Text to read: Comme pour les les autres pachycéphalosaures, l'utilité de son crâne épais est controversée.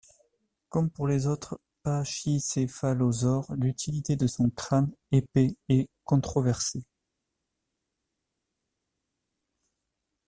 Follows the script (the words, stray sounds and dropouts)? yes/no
no